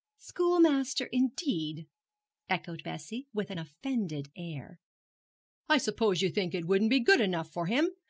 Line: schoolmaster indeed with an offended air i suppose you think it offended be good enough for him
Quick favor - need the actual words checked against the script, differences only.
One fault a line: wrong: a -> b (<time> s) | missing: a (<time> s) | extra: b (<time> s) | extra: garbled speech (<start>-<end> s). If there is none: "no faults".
extra: echoed bessie (2.5 s)
wrong: offended -> wouldn't (6.6 s)